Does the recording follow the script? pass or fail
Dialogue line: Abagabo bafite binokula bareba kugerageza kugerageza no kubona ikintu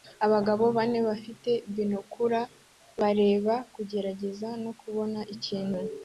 fail